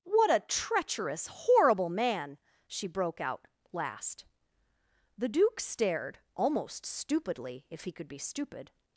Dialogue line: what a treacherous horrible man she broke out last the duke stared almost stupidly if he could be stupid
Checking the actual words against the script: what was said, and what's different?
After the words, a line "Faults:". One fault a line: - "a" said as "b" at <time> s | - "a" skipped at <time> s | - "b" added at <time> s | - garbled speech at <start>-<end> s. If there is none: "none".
what a treacherous horrible man she broke out last the duke stared almost stupidly if he could be stupid
Faults:
none